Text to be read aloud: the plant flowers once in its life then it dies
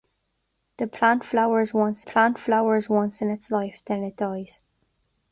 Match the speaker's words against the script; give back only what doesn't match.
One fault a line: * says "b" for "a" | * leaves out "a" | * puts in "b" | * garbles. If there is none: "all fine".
* puts in "plant flowers once"